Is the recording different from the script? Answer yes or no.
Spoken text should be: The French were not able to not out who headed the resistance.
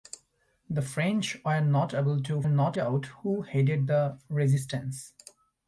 no